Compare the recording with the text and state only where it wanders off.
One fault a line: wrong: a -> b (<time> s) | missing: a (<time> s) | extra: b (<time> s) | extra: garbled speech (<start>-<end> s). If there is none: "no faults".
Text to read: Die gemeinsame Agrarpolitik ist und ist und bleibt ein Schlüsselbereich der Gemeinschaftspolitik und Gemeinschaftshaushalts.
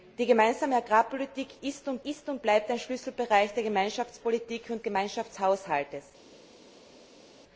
no faults